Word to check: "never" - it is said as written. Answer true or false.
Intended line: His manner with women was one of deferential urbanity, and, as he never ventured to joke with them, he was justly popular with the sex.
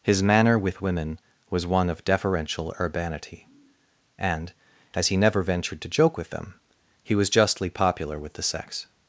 true